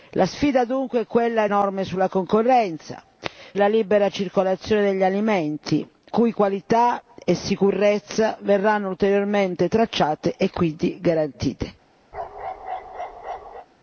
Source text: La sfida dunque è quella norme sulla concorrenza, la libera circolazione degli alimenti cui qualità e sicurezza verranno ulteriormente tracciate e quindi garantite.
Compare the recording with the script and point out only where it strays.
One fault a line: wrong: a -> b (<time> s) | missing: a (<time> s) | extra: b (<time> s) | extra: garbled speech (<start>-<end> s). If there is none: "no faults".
no faults